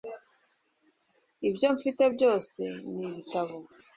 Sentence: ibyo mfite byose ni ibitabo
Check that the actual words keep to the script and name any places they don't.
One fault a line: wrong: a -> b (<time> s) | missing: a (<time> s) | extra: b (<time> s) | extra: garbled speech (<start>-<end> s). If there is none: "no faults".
no faults